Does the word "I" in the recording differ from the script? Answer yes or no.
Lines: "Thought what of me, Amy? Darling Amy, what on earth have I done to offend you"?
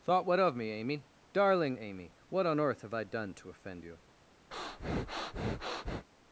no